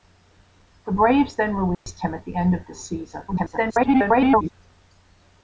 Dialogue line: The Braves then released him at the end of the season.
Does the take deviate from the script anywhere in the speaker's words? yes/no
yes